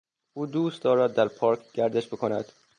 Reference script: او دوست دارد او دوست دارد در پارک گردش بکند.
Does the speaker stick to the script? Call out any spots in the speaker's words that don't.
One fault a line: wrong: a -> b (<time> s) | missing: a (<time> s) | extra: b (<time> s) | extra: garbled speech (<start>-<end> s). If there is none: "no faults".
missing: او دوست دارد (1.1 s)